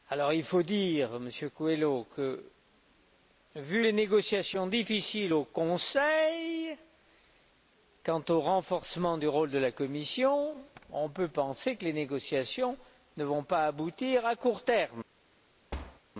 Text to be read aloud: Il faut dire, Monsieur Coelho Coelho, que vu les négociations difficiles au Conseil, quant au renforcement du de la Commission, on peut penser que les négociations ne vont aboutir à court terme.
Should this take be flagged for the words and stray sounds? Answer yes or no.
yes